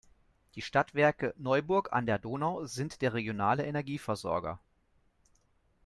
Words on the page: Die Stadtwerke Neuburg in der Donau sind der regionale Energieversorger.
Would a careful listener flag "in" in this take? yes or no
yes